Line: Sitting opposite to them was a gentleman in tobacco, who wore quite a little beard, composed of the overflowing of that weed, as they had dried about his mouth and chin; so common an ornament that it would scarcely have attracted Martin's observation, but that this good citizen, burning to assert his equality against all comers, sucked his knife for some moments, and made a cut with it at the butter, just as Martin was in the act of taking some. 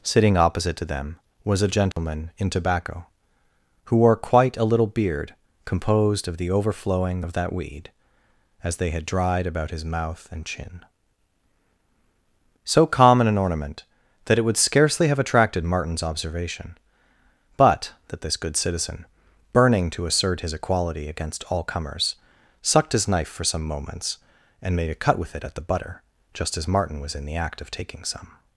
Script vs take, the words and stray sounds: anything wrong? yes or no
yes